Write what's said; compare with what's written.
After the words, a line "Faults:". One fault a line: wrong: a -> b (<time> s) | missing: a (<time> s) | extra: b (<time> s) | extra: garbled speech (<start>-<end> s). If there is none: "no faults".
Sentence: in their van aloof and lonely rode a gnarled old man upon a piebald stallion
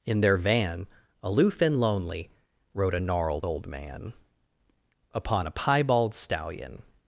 in their van aloof and lonely rode a gnarled old man upon a piebald stallion
Faults:
no faults